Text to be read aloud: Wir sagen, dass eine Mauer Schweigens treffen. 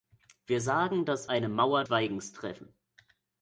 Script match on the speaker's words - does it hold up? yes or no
yes